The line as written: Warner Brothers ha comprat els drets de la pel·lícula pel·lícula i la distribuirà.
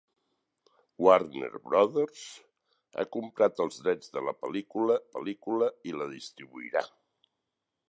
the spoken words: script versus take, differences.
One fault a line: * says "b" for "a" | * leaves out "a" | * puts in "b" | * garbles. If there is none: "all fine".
all fine